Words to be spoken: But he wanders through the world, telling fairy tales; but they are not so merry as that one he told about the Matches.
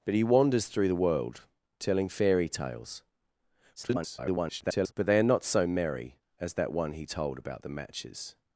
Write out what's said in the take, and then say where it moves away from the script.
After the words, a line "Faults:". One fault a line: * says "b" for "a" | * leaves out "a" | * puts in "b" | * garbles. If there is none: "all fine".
But he wanders through the world, telling fairy tales; [garbled] but they are not so merry as that one he told about the Matches.
Faults:
* garbles